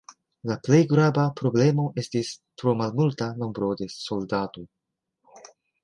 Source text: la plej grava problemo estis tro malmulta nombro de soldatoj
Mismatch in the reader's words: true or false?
false